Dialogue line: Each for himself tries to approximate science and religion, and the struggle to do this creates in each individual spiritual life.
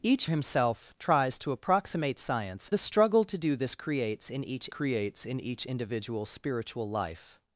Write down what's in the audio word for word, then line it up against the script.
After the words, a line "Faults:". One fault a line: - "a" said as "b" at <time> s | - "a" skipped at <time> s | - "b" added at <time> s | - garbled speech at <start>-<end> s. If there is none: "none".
Each himself tries to approximate science the struggle to do this creates in each creates in each individual spiritual life.
Faults:
- "for" skipped at 0.2 s
- "and religion and" skipped at 2.7 s
- "creates in each" added at 4.7 s